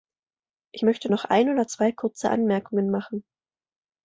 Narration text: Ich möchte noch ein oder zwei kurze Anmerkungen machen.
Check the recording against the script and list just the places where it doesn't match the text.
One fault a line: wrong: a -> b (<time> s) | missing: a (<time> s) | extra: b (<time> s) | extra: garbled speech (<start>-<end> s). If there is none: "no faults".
no faults